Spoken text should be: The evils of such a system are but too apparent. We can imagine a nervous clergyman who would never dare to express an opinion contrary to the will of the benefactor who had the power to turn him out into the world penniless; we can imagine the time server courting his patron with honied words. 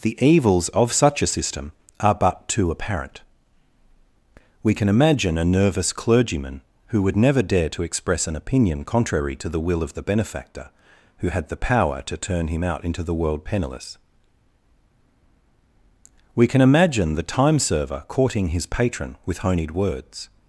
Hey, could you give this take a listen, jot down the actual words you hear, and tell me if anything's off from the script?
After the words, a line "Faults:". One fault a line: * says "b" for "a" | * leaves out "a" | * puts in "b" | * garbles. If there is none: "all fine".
The evils of such a system are but too apparent. We can imagine a nervous clergyman who would never dare to express an opinion contrary to the will of the benefactor who had the power to turn him out into the world penniless; we can imagine the time server courting his patron with honied words.
Faults:
all fine